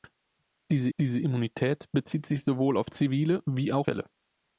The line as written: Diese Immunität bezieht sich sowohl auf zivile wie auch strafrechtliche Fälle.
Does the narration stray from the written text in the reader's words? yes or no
yes